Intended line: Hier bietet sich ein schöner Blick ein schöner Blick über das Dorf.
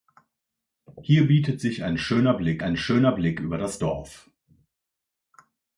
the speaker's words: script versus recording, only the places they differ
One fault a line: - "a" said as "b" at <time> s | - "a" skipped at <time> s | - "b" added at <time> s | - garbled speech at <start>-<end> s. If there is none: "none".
none